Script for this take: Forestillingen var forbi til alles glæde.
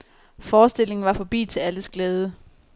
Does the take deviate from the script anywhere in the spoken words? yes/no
no